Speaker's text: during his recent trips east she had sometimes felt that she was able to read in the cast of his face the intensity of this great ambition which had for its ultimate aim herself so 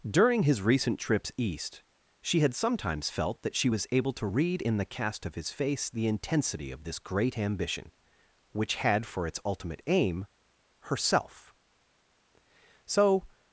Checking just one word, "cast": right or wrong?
right